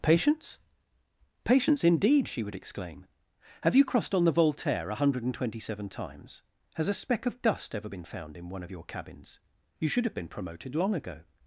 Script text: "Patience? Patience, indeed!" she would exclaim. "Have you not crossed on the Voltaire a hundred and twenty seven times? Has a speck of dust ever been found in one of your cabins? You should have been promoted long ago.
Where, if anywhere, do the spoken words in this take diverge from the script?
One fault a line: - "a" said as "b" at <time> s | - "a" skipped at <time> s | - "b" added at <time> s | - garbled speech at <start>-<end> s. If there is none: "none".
- "not" skipped at 3.9 s